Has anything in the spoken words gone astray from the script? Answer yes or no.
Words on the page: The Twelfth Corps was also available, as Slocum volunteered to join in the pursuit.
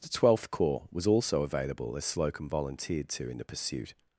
yes